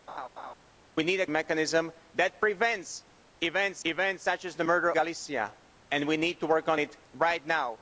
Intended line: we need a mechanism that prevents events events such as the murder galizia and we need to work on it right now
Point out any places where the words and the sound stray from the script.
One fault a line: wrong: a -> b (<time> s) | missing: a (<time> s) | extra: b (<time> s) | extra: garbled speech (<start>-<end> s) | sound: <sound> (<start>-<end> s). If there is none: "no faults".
sound: laugh (0.1-0.5 s)